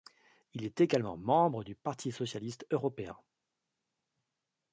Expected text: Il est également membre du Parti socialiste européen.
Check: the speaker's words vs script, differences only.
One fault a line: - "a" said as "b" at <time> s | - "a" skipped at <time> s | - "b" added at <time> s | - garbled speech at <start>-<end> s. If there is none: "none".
none